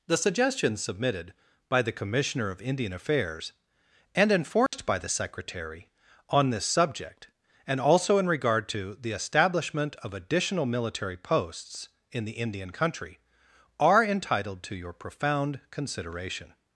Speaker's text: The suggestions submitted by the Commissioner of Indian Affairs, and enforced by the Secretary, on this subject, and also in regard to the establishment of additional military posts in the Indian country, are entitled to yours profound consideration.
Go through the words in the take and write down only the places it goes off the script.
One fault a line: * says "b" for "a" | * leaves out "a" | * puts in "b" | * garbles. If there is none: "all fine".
* says "your" for "yours"